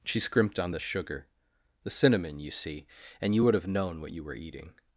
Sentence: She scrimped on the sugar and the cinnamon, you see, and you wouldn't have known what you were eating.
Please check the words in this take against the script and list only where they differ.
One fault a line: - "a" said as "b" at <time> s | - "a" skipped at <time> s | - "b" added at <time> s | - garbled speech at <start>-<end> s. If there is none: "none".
- "and" skipped at 1.3 s
- "wouldn't" said as "would" at 3.4 s